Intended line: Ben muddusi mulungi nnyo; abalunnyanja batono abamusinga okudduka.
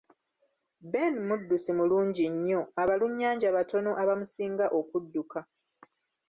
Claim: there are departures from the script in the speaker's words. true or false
false